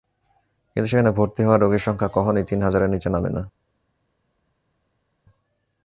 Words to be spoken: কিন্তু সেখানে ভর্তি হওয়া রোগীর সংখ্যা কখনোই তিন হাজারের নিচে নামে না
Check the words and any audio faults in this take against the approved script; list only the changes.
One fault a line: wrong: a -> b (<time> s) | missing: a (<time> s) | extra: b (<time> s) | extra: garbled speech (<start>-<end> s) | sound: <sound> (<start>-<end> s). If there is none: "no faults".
no faults